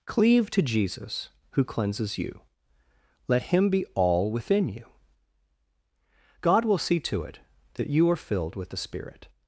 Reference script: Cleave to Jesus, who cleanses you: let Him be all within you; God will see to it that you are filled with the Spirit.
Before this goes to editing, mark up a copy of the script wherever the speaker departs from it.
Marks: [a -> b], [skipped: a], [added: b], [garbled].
Cleave to Jesus, who cleanses you: let Him be all within you; God will see to it that you are filled with the Spirit.